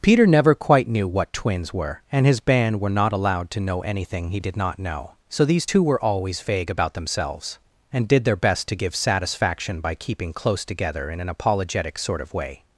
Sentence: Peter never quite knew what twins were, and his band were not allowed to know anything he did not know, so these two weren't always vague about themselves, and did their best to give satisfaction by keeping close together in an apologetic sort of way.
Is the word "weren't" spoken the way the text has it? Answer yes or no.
no